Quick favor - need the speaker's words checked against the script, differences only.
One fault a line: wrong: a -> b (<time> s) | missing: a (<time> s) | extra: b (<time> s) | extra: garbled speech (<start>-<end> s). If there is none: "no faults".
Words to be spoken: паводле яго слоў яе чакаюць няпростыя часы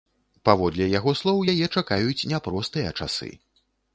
no faults